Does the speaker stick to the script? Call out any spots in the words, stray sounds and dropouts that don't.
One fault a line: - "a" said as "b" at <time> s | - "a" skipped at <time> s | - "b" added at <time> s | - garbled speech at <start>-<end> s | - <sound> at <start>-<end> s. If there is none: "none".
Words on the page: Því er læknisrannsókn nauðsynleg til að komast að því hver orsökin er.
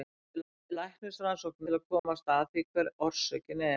- "því" added at 0.4 s
- "nauðsynleg" skipped at 1.7 s
- dropout at 2.0-2.0 s